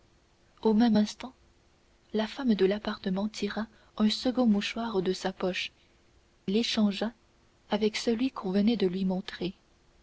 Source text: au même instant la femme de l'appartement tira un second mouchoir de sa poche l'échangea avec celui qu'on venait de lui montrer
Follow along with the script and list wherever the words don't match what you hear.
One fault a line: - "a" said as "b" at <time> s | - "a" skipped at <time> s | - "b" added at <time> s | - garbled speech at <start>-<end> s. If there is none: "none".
none